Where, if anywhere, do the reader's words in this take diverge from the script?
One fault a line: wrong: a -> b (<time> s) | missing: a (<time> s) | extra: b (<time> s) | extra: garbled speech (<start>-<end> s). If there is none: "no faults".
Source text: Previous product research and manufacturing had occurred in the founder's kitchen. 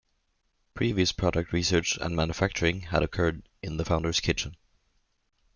no faults